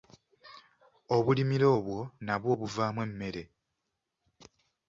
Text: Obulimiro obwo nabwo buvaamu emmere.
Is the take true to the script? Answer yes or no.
yes